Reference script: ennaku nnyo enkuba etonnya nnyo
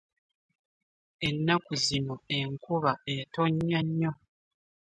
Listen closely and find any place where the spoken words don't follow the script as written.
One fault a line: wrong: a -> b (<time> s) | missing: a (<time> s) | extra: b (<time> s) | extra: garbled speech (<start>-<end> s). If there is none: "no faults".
wrong: nnyo -> zino (1.9 s)